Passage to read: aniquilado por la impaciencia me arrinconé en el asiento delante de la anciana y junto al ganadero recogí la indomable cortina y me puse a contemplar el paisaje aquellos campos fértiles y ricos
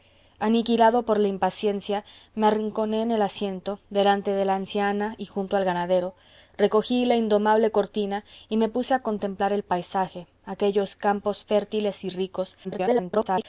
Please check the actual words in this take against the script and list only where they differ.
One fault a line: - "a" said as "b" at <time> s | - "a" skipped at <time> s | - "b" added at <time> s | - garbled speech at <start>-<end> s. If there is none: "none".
- garbled speech at 12.6-13.4 s